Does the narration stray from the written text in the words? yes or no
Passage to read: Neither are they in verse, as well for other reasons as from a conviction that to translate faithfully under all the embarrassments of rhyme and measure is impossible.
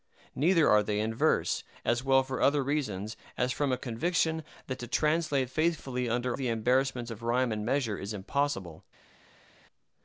yes